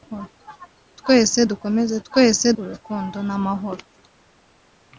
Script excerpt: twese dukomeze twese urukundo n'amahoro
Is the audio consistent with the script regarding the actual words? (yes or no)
yes